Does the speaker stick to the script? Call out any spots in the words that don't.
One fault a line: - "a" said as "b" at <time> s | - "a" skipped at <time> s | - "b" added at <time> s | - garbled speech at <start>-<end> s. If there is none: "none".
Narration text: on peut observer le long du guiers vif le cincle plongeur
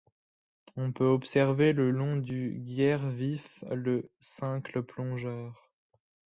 none